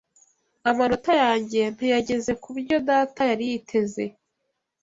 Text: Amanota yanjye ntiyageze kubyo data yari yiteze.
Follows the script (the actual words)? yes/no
yes